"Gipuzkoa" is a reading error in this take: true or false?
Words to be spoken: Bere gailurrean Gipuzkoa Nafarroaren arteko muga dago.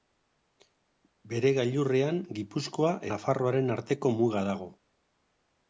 false